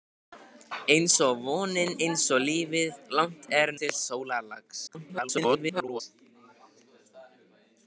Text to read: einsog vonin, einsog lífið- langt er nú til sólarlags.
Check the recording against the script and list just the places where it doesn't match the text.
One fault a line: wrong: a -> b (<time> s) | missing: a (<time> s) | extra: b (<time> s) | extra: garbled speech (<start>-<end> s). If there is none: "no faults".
missing: nú (3.7 s)
extra: garbled speech (4.9-6.0 s)